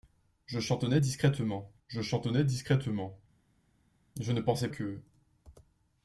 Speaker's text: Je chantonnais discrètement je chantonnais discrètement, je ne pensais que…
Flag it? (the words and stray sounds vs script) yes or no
no